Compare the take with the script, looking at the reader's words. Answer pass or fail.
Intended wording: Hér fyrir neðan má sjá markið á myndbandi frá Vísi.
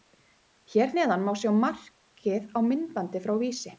fail